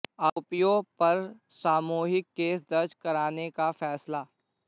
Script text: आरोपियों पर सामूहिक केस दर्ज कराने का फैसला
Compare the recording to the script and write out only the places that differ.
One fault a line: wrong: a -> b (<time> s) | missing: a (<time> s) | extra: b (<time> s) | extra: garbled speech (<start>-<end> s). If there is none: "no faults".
no faults